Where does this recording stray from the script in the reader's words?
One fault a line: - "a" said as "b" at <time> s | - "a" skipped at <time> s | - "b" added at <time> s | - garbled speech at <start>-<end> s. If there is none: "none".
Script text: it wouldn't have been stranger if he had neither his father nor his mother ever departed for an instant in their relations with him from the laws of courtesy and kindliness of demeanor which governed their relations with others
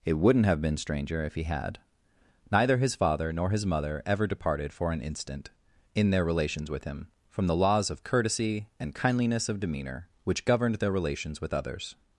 none